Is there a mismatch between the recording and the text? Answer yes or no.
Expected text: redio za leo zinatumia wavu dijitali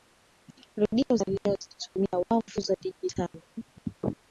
yes